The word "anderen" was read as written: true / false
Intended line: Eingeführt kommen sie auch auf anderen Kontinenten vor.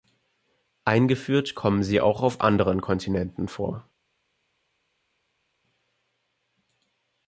true